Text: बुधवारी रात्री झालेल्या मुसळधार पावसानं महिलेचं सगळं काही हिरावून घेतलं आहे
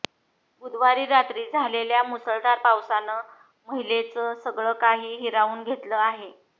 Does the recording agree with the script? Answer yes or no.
yes